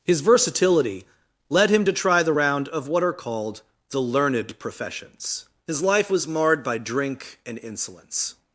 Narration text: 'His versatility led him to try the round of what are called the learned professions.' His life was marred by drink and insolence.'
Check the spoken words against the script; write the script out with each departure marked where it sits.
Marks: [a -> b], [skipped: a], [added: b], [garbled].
'His versatility led him to try the round of what are called the learned professions.' His life was marred by drink and insolence.'